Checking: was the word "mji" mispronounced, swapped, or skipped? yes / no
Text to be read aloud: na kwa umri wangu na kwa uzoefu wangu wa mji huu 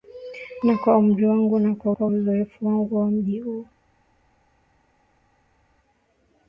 no